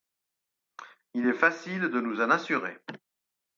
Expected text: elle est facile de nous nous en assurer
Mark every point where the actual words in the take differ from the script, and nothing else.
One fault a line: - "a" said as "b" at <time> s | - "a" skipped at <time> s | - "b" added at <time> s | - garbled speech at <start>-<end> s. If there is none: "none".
- "elle" said as "il" at 1.1 s
- "nous" skipped at 2.2 s